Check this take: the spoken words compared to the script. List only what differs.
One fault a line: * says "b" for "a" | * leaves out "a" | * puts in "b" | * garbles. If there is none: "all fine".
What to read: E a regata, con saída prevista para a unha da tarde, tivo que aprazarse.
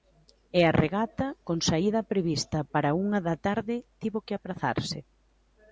all fine